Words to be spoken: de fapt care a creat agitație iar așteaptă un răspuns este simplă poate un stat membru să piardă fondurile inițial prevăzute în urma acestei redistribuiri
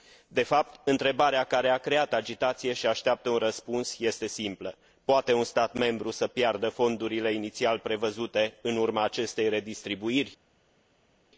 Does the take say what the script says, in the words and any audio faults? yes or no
no